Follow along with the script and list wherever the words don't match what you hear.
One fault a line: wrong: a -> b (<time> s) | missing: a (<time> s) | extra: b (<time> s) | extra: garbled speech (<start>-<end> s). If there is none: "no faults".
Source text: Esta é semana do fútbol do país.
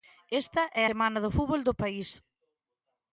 no faults